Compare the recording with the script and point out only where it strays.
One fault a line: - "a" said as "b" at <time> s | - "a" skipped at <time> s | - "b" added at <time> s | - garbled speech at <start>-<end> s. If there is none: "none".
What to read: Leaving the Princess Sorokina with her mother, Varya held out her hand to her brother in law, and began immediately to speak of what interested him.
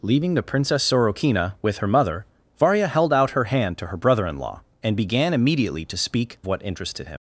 - "of" skipped at 6.4 s